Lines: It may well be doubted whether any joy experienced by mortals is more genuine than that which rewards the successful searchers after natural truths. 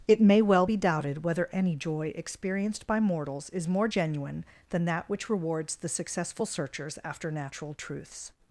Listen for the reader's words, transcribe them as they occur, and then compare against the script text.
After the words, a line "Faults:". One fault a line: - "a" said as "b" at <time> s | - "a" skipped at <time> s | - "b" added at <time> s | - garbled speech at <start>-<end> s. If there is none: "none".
It may well be doubted whether any joy experienced by mortals is more genuine than that which rewards the successful searchers after natural truths.
Faults:
none